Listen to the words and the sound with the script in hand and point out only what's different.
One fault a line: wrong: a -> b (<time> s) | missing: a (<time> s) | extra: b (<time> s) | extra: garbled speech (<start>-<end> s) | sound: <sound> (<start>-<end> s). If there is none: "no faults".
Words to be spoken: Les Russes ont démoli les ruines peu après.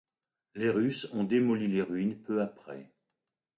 no faults